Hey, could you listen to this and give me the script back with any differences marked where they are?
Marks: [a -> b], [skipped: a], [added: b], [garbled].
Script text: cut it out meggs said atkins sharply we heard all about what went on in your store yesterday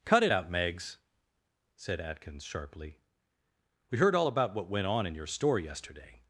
cut it out meggs said atkins sharply we heard all about what went on in your store yesterday